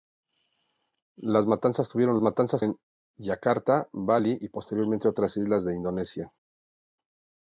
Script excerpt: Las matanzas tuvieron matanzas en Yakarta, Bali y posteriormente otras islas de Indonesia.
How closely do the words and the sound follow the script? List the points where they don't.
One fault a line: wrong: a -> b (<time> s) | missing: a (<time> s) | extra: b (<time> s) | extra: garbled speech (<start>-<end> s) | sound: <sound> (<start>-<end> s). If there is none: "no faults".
no faults